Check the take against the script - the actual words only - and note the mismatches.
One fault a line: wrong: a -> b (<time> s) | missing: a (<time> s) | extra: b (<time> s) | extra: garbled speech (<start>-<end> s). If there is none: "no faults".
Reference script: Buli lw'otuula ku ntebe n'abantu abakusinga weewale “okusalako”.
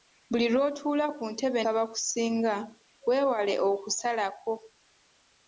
missing: n'abantu (1.6 s)